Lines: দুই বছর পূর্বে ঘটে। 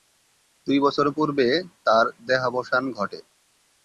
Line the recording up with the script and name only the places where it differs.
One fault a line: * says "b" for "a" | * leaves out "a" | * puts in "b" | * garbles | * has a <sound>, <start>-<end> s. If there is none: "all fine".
* puts in "তার দেহাবসান"